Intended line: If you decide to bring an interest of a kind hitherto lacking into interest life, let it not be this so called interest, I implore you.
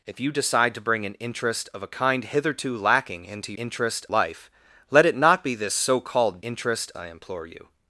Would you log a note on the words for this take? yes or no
no